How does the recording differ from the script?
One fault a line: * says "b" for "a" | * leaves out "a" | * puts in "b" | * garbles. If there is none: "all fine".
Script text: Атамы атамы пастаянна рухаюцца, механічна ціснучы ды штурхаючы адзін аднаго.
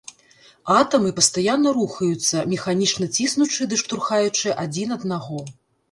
* leaves out "атамы"